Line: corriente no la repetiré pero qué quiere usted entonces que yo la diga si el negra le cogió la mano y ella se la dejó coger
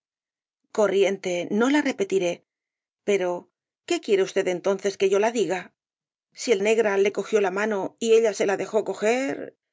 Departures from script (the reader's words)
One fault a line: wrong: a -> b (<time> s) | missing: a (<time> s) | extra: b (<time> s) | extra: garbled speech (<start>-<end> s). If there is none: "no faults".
no faults